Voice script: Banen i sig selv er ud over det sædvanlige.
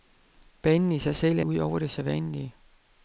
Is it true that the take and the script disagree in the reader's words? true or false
false